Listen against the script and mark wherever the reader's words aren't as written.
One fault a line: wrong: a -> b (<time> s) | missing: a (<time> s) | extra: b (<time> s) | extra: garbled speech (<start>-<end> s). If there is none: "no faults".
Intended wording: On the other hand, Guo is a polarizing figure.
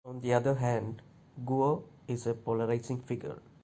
no faults